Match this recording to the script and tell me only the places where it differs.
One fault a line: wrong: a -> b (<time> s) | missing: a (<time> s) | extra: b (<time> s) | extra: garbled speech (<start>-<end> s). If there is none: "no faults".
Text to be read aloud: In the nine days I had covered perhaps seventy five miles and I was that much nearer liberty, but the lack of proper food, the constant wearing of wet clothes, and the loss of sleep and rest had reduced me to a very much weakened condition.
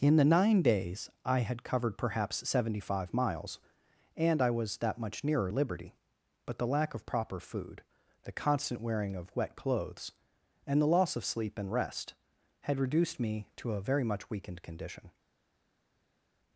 no faults